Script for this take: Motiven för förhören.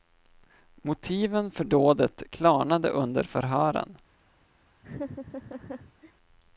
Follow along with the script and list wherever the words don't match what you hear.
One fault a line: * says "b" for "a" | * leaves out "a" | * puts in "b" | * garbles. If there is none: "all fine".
* puts in "dådet klarnade under"